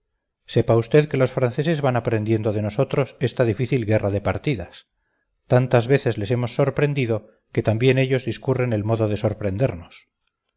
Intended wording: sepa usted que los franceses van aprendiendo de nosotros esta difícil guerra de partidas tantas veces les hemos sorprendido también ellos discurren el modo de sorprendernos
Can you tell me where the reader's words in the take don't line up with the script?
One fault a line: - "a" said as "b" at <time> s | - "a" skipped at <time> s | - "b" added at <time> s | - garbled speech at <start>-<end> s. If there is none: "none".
- "que" added at 7.5 s